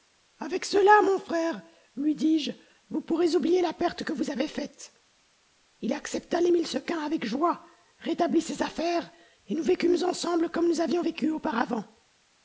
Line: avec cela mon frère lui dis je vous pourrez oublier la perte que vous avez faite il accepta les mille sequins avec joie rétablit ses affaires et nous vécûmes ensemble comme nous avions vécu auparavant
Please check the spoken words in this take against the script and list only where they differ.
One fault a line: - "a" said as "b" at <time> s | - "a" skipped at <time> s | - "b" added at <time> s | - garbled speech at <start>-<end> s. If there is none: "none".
none